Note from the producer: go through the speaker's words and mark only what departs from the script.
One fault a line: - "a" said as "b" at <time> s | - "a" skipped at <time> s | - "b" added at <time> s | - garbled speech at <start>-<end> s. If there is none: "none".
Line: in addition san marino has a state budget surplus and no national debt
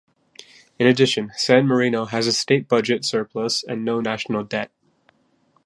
none